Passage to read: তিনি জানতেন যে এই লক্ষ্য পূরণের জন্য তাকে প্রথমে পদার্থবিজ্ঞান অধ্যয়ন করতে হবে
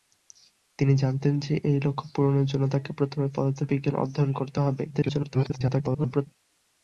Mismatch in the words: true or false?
true